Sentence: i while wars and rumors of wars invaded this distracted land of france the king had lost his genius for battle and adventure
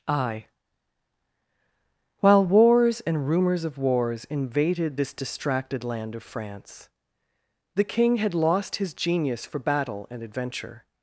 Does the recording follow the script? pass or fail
pass